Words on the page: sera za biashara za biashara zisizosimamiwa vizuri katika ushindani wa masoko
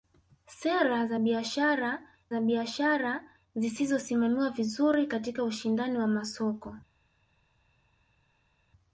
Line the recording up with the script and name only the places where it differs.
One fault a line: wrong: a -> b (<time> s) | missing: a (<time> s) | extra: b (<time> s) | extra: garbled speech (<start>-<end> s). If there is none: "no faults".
no faults